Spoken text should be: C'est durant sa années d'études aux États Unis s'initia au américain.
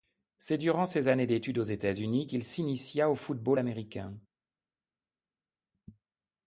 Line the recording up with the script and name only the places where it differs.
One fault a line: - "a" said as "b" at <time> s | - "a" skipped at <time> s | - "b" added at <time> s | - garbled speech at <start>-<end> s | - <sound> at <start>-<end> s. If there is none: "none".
- "sa" said as "ses" at 0.9 s
- "qu'il" added at 2.2 s
- "football" added at 3.2 s